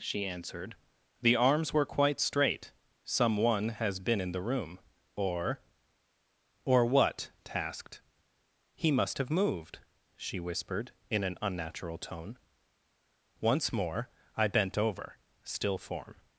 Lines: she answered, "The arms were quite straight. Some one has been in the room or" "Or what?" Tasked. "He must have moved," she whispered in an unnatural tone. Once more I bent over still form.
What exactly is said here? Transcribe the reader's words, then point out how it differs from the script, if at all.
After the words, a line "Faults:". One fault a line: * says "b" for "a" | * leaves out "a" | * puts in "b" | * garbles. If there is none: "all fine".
she answered, "The arms were quite straight. Some one has been in the room or" "Or what?" Tasked. "He must have moved," she whispered in an unnatural tone. Once more I bent over still form.
Faults:
all fine